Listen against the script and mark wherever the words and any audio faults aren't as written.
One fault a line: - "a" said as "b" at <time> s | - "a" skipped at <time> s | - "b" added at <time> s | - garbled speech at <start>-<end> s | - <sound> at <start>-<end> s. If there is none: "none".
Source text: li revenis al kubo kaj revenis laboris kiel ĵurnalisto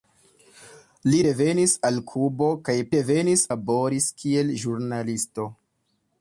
none